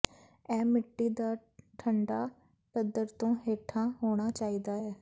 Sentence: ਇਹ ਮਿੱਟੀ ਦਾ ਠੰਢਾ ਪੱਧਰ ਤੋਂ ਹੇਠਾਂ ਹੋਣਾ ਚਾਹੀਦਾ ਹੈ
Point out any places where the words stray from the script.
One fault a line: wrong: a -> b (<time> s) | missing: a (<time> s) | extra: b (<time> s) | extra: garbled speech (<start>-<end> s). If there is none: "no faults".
no faults